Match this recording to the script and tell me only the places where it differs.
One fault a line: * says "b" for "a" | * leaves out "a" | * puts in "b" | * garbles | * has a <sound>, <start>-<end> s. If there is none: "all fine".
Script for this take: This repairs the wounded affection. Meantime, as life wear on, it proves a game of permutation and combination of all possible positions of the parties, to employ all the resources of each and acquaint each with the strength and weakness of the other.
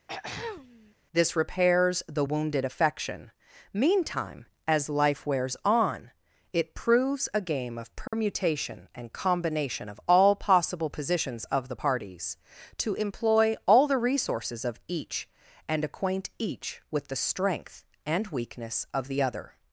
* has a throat clearing, 0.1-0.9 s
* says "wears" for "wear"
* has a dropout, 8.1-8.1 s